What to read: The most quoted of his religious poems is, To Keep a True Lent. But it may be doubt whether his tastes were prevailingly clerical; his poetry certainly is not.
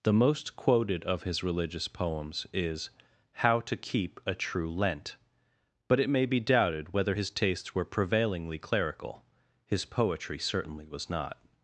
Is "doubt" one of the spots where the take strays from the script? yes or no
yes